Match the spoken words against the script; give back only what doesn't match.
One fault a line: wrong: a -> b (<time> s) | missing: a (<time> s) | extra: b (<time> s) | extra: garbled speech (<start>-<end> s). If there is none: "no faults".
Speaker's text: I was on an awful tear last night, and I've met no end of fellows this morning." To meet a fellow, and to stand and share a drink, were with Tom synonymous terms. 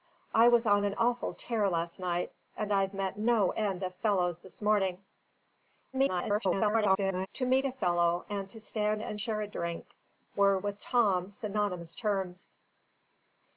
extra: garbled speech (5.9-7.3 s)